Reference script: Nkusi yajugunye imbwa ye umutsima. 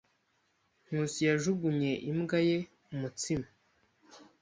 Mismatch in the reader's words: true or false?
false